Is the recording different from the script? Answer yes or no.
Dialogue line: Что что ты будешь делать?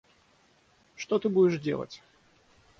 yes